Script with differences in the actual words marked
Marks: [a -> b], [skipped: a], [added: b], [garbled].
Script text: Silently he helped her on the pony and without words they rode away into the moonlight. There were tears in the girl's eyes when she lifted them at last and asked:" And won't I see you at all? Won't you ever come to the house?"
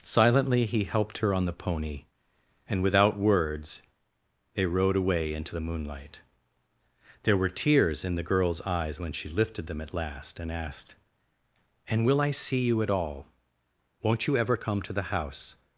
Silently he helped her on the pony and without words they rode away into the moonlight. There were tears in the girl's eyes when she lifted them at last and asked:" And [won't -> will] I see you at all? Won't you ever come to the house?"